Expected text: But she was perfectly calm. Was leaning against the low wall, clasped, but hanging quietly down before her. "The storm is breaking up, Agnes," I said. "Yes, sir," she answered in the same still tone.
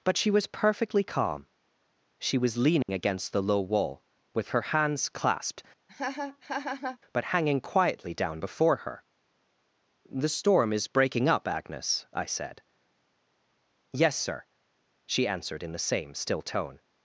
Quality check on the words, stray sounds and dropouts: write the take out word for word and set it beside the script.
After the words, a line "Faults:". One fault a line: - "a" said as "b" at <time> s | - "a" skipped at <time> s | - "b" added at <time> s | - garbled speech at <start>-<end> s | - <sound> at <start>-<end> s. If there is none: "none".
But she was perfectly calm. She was leaning against the low wall, with her hands clasped, but hanging quietly down before her. "The storm is breaking up, Agnes," I said. "Yes, sir," she answered in the same still tone.
Faults:
- "She" added at 2.2 s
- dropout at 2.8-2.9 s
- "with her hands" added at 4.3 s
- laugh at 5.9-7.0 s